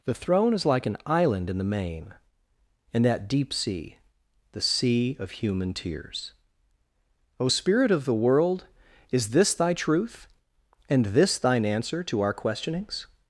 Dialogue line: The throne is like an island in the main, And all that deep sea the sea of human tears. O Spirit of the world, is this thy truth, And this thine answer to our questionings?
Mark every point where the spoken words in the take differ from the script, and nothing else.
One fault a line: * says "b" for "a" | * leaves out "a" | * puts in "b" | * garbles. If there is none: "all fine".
* leaves out "all"